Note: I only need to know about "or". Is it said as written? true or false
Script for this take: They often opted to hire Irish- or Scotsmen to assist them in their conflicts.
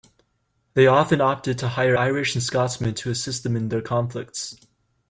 false